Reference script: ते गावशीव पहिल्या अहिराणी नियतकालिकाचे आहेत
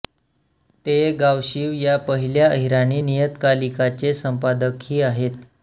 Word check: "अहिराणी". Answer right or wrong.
right